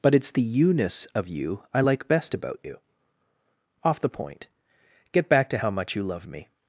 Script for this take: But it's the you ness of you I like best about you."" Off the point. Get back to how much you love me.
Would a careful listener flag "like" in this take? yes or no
no